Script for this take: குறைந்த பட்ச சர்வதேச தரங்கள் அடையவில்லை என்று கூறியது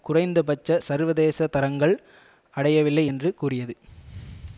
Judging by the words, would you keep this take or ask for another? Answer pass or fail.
pass